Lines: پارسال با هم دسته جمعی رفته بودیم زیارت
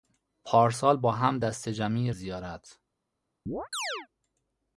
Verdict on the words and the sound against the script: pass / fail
fail